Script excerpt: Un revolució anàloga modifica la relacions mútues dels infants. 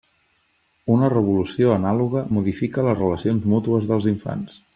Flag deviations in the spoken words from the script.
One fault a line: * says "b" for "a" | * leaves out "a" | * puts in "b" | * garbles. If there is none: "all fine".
* says "Una" for "Un"
* says "les" for "la"